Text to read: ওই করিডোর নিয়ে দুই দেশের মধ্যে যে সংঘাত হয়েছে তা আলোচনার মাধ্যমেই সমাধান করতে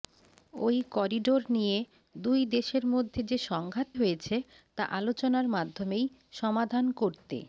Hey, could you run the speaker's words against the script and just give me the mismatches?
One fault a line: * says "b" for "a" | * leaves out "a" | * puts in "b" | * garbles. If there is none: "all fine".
all fine